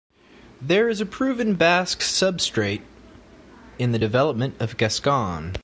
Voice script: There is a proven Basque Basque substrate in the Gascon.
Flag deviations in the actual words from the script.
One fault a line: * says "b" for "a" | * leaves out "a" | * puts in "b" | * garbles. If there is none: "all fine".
* leaves out "Basque"
* puts in "development of"